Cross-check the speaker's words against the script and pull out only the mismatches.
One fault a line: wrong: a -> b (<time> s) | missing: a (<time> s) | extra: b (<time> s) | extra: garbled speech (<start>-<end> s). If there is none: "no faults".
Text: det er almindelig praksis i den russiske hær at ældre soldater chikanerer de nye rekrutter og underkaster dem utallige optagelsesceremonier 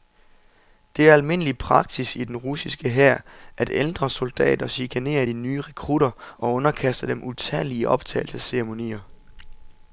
no faults